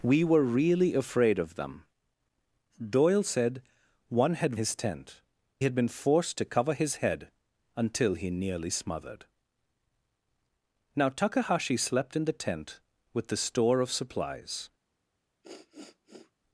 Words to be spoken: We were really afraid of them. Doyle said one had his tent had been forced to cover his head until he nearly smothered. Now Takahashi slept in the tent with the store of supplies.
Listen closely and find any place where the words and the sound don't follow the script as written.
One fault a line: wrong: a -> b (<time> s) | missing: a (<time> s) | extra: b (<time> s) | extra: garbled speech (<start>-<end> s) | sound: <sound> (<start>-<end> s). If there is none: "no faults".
sound: sniff (15.4-16.3 s)